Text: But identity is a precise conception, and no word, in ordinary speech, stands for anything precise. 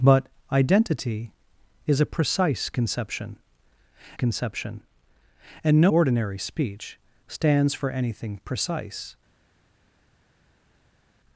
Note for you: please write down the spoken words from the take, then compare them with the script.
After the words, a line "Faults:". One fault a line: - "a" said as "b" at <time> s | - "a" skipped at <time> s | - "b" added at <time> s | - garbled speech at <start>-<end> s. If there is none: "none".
But identity is a precise conception conception, and no ordinary speech, stands for anything precise.
Faults:
- "conception" added at 4.1 s
- "word in" skipped at 5.9 s